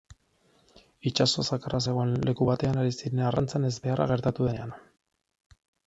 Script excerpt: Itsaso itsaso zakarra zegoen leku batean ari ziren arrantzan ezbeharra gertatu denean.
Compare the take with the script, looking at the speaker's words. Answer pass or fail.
fail